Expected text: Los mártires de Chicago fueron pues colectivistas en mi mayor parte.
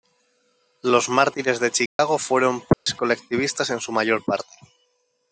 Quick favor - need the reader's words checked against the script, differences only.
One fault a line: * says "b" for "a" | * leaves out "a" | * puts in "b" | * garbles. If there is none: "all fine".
* says "su" for "mi"